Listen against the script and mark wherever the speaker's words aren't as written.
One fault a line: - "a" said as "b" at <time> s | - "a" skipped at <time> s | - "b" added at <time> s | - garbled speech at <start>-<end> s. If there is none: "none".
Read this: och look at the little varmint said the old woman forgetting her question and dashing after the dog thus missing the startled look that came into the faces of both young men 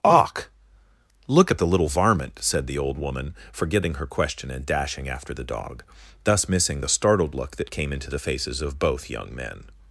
none